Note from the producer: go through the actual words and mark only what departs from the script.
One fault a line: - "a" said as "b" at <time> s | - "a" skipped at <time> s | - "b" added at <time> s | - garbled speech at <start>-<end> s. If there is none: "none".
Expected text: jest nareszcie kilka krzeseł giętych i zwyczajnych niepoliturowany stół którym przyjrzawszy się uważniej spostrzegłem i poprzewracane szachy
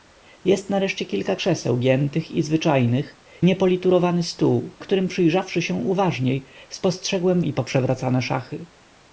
none